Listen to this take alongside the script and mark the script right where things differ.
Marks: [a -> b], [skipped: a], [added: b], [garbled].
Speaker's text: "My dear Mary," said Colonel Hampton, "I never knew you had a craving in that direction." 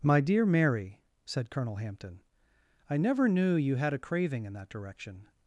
"My dear Mary," said Colonel Hampton, "I never knew you had a craving in that direction."